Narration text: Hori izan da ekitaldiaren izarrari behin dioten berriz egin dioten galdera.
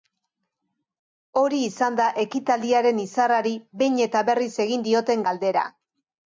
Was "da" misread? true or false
false